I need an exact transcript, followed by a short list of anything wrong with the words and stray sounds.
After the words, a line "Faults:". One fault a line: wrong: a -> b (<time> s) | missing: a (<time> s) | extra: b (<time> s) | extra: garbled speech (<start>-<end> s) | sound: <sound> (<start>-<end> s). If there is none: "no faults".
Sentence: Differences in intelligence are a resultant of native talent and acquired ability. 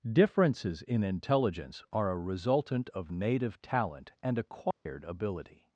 Differences in intelligence are a resultant of native talent and acquired ability.
Faults:
sound: dropout (4.7-4.9 s)